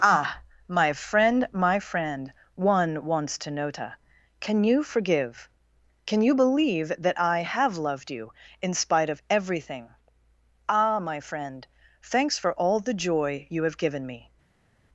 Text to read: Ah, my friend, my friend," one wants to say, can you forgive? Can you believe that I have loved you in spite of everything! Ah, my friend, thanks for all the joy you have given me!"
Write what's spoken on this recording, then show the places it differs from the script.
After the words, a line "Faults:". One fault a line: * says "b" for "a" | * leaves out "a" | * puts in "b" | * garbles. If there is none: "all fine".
Ah, my friend, my friend," one wants to nota, can you forgive? Can you believe that I have loved you in spite of everything! Ah, my friend, thanks for all the joy you have given me!"
Faults:
* says "nota" for "say"